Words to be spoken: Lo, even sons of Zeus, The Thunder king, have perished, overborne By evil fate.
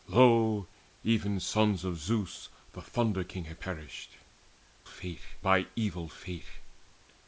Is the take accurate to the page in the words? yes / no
no